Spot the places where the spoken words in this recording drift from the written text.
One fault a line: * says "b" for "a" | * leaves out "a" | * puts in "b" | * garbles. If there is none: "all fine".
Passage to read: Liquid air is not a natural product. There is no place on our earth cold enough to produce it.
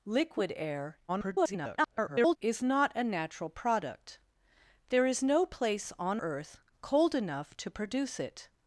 * garbles
* leaves out "our"